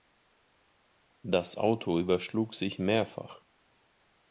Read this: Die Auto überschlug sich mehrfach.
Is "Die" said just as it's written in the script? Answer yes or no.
no